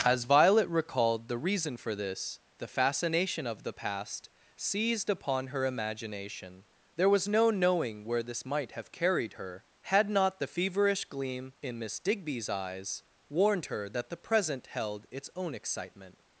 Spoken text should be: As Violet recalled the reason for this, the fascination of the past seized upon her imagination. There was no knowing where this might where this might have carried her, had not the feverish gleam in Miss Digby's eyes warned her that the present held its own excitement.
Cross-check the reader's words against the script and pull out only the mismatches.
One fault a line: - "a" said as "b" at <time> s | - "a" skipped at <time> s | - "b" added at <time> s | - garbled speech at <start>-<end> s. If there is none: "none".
- "where this might" skipped at 8.7 s